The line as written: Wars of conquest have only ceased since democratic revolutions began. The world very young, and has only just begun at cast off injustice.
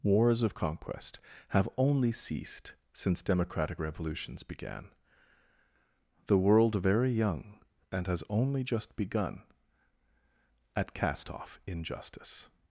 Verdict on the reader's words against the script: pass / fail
pass